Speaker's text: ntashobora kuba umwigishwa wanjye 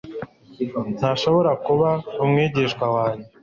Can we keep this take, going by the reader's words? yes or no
yes